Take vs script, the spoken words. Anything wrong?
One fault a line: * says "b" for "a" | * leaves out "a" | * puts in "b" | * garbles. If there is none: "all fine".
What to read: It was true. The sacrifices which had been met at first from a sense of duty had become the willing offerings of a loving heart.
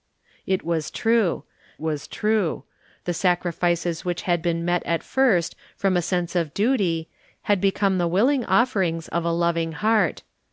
* puts in "was true"